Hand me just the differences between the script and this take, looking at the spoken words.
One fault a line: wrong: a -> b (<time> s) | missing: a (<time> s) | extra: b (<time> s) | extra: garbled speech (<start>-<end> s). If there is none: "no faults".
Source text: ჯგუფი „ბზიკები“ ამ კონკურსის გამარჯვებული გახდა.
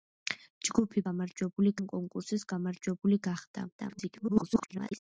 wrong: ბზიკები -> გამარჯვებული (1.1 s)
extra: garbled speech (3.8-5.0 s)